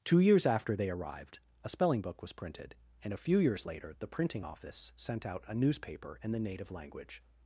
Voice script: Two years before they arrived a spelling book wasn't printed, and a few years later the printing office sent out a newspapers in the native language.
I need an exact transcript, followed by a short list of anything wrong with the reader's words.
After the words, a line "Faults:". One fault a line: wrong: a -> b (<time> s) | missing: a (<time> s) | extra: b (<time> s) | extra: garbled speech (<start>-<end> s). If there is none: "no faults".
Two years after they arrived a spelling book was printed, and a few years later the printing office sent out a newspaper in the native language.
Faults:
wrong: before -> after (0.5 s)
wrong: wasn't -> was (2.2 s)
wrong: newspapers -> newspaper (5.5 s)